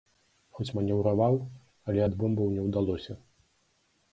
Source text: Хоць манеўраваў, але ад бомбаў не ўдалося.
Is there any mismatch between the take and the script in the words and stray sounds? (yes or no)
no